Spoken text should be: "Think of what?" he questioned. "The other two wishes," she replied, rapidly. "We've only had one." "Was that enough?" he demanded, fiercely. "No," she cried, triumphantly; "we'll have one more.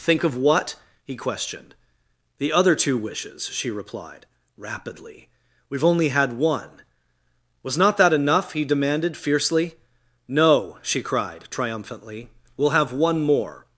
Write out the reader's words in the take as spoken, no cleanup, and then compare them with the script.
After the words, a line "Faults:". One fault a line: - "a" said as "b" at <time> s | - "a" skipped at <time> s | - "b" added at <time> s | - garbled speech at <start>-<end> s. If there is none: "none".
"Think of what?" he questioned. "The other two wishes," she replied, rapidly. "We've only had one." "Was not that enough?" he demanded, fiercely. "No," she cried, triumphantly; "we'll have one more.
Faults:
- "not" added at 7.8 s